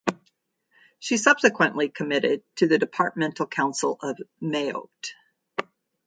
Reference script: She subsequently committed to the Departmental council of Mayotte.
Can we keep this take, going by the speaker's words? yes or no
yes